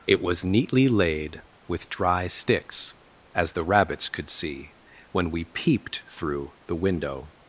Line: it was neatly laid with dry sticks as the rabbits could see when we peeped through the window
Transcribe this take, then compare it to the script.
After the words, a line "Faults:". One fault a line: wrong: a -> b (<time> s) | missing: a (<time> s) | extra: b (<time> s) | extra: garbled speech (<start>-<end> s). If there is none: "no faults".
it was neatly laid with dry sticks as the rabbits could see when we peeped through the window
Faults:
no faults